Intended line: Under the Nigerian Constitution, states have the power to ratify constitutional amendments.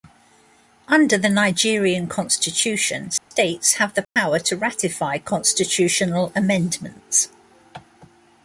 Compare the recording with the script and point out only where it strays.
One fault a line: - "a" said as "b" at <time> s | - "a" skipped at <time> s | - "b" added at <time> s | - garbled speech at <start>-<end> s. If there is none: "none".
none